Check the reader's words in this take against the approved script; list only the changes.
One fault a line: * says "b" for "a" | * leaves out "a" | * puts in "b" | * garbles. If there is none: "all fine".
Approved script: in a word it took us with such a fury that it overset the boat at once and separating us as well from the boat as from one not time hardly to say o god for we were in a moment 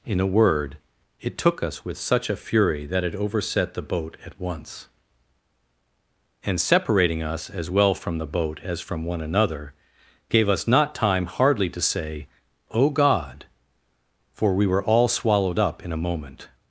* puts in "another gave us"
* puts in "all swallowed up"